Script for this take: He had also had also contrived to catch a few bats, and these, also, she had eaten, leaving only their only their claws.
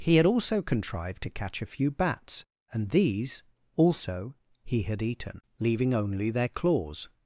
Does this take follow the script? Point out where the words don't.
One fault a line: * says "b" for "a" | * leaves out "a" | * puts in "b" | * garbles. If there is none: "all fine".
* leaves out "had also"
* says "he" for "she"
* leaves out "only their"